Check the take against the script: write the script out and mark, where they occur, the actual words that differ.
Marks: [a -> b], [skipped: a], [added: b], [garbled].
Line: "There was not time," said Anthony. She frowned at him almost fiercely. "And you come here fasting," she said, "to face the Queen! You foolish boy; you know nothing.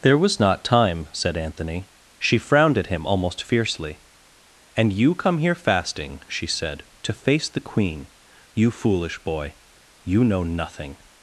"There was not time," said Anthony. She frowned at him almost fiercely. "And you come here fasting," she said, "to face the Queen! You foolish boy; you know nothing.